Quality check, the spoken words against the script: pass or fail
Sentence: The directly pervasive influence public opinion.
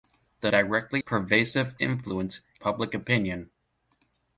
pass